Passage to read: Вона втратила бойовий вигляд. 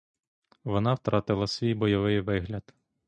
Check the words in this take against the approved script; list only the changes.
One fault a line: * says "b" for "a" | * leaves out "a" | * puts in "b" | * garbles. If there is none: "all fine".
* puts in "свій"